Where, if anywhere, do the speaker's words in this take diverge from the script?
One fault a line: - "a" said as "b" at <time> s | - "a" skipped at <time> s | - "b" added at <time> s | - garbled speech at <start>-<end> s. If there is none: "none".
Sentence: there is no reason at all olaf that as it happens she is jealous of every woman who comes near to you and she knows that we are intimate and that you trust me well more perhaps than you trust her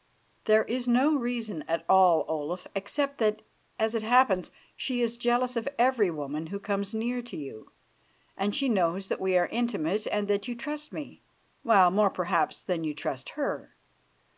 - "except" added at 2.7 s